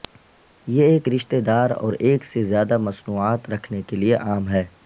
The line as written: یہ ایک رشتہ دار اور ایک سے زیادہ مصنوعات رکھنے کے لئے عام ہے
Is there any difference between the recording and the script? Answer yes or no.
no